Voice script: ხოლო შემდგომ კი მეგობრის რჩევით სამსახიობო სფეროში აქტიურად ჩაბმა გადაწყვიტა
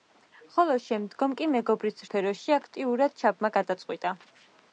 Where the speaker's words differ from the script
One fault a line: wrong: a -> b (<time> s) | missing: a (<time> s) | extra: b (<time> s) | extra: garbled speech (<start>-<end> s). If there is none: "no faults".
missing: რჩევით სამსახიობო (2.0 s)